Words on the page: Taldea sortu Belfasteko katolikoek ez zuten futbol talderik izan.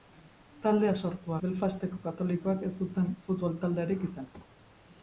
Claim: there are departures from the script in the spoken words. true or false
false